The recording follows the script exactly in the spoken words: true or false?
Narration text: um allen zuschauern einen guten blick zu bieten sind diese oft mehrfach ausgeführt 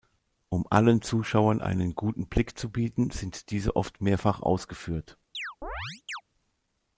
true